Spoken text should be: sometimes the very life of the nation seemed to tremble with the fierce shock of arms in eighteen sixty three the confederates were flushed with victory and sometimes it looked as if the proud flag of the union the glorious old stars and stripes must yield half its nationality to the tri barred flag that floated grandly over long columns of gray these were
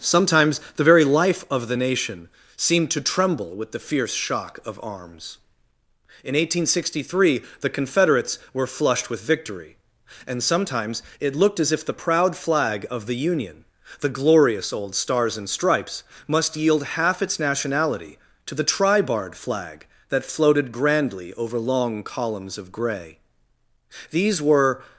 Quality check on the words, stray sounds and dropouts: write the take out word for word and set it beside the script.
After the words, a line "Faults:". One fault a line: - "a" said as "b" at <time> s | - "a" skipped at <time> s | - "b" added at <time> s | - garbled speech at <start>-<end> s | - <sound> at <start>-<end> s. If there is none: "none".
sometimes the very life of the nation seemed to tremble with the fierce shock of arms in eighteen sixty three the confederates were flushed with victory and sometimes it looked as if the proud flag of the union the glorious old stars and stripes must yield half its nationality to the tri barred flag that floated grandly over long columns of gray these were
Faults:
none